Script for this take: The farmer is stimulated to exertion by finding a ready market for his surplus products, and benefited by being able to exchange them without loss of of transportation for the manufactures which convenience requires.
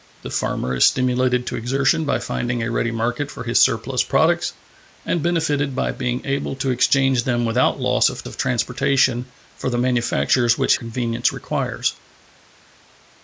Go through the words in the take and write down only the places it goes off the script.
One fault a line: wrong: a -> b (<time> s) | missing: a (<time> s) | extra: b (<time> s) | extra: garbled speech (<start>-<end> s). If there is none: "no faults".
no faults